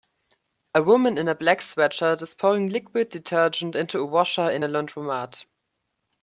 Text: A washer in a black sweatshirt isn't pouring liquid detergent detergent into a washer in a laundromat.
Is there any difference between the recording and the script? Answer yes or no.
yes